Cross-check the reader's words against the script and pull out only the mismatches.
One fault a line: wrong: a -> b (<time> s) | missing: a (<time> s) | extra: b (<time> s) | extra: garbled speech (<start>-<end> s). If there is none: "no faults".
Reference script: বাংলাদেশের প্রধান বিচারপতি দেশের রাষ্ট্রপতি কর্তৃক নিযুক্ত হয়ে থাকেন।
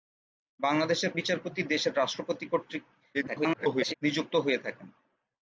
missing: প্রধান (1.1 s)
extra: garbled speech (3.1-3.9 s)